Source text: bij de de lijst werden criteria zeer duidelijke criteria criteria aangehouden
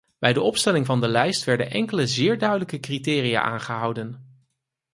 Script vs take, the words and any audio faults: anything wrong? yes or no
yes